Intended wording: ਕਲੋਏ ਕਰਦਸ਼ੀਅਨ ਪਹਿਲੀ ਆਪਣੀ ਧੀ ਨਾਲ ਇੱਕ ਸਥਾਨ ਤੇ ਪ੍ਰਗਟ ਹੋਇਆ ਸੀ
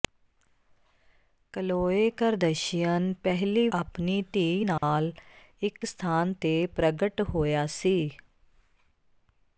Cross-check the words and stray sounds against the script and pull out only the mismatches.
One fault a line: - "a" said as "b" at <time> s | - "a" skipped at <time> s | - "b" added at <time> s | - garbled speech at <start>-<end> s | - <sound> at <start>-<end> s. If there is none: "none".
- dropout at 4.8-4.8 s